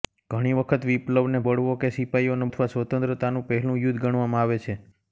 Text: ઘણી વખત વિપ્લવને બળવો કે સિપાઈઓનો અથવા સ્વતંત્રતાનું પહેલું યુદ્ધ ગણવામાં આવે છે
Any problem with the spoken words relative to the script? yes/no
no